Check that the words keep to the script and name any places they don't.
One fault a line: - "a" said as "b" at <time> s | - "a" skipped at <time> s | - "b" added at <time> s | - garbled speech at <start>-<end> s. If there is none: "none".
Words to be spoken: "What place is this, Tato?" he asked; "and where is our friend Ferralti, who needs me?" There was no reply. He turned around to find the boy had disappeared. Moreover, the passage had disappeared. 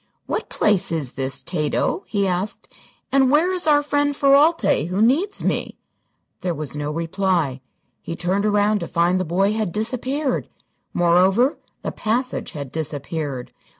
none